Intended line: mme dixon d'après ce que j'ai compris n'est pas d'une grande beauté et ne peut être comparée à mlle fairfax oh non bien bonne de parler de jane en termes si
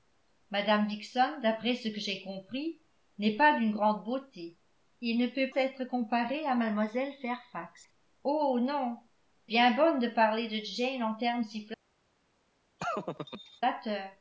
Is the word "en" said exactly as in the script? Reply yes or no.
yes